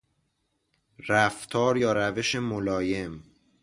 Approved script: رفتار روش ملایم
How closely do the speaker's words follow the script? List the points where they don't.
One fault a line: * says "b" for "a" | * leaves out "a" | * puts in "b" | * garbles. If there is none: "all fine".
* puts in "یا"